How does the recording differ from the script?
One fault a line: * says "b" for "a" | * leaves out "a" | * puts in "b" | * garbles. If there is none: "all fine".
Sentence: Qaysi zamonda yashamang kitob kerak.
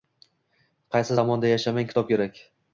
all fine